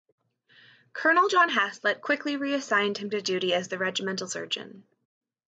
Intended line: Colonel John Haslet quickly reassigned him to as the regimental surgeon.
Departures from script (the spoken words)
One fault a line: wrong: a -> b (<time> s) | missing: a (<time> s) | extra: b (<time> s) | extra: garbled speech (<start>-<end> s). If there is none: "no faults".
extra: duty (3.2 s)